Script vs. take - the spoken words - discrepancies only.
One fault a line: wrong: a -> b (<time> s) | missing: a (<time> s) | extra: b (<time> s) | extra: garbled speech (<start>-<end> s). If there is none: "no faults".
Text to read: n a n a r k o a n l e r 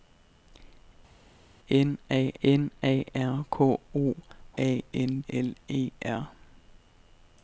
no faults